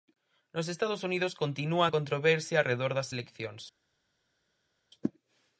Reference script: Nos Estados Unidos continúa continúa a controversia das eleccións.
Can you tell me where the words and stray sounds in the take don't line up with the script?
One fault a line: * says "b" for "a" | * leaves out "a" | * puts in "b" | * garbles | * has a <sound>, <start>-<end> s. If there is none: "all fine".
* leaves out "continúa"
* puts in "arredor"